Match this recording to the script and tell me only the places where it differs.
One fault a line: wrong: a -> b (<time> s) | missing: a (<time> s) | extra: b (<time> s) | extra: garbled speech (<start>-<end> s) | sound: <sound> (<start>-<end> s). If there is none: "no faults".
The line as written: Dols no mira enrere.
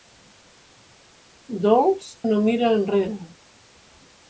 no faults